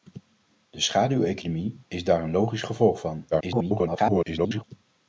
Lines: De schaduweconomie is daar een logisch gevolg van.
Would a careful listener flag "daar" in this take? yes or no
no